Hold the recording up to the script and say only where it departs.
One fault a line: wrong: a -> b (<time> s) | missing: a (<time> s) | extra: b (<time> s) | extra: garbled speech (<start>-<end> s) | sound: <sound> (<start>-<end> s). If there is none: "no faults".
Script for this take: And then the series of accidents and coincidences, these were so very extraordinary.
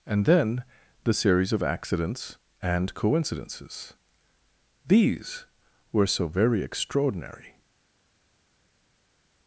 no faults